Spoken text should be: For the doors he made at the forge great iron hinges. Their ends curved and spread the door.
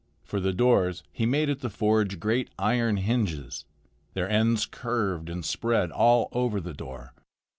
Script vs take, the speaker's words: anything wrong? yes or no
yes